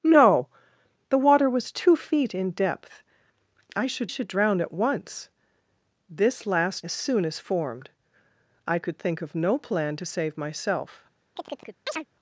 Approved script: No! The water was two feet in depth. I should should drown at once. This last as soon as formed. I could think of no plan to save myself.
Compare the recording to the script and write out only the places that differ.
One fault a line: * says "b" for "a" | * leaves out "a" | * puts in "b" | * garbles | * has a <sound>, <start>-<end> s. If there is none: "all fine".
* has a chirp, 11.4-12.1 s